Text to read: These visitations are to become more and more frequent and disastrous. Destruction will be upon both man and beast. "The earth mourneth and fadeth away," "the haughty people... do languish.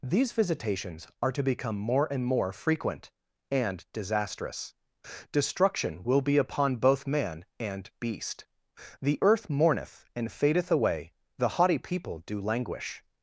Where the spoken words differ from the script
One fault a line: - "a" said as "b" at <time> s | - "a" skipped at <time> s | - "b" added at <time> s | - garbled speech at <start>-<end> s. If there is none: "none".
none